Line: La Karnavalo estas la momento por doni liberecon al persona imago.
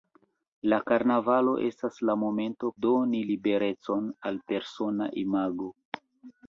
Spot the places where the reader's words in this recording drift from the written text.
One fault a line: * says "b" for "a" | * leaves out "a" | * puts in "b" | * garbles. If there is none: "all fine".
* leaves out "por"